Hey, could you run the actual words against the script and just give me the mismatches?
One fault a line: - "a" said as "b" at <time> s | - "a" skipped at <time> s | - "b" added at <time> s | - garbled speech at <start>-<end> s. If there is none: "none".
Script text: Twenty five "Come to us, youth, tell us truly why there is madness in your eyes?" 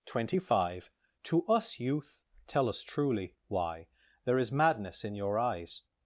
- "Come" skipped at 0.9 s